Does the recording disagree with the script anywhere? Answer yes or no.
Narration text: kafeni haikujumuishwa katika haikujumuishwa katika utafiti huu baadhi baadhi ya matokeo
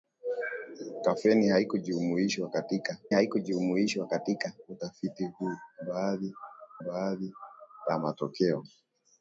no